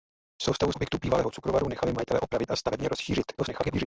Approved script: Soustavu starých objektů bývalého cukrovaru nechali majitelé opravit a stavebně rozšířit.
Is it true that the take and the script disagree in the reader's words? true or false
true